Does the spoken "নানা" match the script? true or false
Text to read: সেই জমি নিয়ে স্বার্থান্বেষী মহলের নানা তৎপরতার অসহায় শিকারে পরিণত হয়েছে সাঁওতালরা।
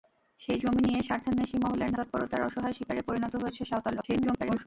false